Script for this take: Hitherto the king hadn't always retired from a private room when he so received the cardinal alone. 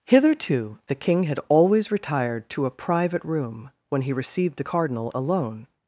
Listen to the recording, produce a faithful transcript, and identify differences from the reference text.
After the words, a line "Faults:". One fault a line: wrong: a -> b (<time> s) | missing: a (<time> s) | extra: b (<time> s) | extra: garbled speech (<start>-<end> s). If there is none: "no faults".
Hitherto the king had always retired to a private room when he received the cardinal alone.
Faults:
wrong: hadn't -> had (1.2 s)
wrong: from -> to (2.5 s)
missing: so (4.1 s)